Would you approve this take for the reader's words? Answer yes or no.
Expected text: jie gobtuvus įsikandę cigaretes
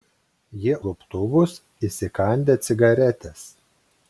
yes